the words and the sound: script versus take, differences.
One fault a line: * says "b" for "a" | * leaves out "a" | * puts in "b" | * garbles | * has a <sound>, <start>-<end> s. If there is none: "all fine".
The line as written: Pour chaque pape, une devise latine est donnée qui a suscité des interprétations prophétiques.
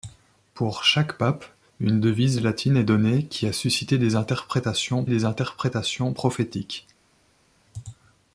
* puts in "des interprétations"